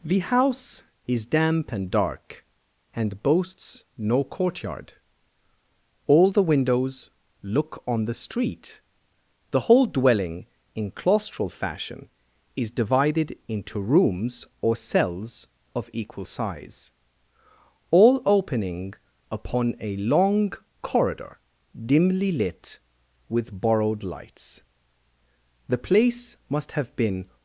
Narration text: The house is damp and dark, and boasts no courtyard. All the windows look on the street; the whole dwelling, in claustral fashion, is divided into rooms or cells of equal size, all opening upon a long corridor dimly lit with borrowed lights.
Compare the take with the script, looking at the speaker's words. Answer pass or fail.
fail